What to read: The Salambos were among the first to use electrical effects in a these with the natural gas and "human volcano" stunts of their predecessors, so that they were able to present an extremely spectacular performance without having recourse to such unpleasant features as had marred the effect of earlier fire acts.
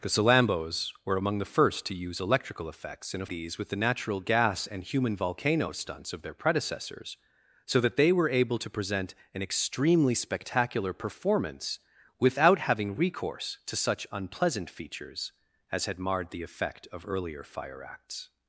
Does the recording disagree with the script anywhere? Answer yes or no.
no